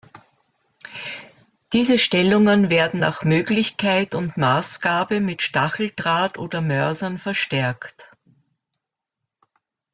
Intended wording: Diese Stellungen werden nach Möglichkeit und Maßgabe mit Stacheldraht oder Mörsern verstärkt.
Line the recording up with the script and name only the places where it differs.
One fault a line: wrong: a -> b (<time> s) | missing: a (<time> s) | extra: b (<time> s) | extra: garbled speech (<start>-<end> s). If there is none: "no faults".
no faults